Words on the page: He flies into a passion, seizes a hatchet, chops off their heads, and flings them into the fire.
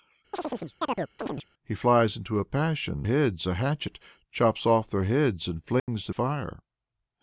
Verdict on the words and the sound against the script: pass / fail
fail